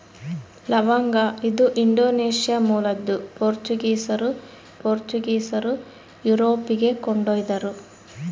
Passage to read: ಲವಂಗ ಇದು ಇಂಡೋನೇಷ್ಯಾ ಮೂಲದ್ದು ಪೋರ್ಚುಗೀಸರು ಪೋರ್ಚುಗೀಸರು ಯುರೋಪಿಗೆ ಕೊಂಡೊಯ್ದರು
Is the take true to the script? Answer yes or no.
yes